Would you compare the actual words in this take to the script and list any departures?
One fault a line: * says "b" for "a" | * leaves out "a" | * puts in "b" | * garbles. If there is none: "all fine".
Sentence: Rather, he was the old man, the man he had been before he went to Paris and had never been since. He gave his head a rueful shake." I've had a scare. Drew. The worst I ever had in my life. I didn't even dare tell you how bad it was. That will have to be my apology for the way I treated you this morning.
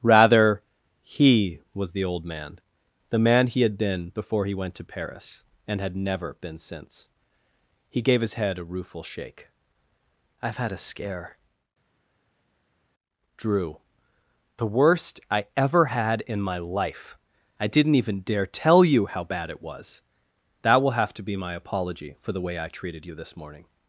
all fine